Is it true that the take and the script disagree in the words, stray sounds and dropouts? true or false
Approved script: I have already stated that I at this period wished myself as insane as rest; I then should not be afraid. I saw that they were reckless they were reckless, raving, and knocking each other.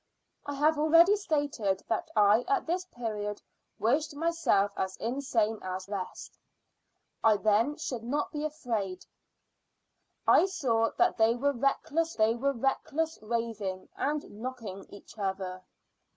false